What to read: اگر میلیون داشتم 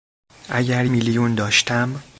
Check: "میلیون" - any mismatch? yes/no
no